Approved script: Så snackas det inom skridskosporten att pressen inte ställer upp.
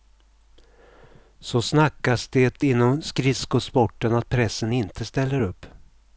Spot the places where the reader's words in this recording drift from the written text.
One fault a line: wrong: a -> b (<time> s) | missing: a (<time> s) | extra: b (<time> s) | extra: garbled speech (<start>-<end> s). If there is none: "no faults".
no faults